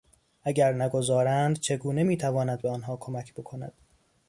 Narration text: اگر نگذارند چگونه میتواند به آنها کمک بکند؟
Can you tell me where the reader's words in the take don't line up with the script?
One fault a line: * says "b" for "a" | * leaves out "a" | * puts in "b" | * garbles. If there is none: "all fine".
all fine